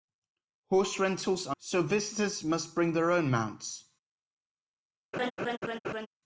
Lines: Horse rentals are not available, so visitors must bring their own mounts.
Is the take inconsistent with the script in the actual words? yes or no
yes